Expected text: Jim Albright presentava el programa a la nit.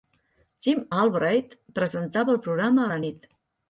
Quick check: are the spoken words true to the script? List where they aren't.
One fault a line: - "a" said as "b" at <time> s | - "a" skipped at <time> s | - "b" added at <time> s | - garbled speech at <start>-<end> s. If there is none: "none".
none